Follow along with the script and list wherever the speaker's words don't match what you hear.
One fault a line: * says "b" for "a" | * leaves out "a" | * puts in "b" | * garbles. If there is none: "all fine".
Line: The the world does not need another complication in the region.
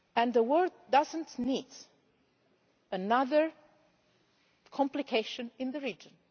* leaves out "the"